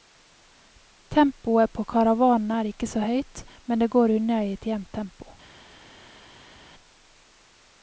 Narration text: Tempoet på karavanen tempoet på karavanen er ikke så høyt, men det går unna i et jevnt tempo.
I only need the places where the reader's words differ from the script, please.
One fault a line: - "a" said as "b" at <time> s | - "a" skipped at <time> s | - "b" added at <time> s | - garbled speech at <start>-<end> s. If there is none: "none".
- "tempoet på karavanen" skipped at 2.5 s